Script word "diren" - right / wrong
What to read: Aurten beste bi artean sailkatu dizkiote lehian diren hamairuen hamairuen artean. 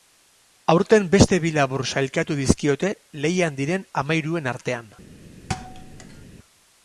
right